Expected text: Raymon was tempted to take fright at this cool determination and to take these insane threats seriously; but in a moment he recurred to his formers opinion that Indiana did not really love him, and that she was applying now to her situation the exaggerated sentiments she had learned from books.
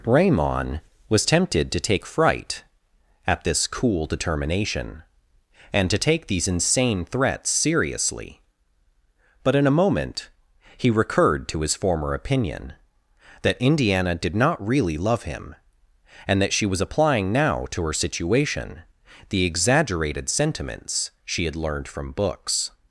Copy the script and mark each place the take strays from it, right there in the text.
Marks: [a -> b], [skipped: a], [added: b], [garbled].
Raymon was tempted to take fright at this cool determination and to take these insane threats seriously; but in a moment he recurred to his [formers -> former] opinion that Indiana did not really love him, and that she was applying now to her situation the exaggerated sentiments she had learned from books.